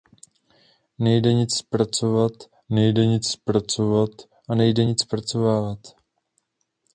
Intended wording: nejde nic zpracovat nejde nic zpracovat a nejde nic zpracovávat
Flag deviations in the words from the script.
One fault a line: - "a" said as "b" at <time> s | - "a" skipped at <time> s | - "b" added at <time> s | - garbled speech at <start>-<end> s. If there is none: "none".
none